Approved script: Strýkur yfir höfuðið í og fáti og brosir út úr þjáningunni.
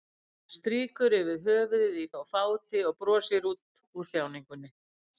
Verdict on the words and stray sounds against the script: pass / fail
pass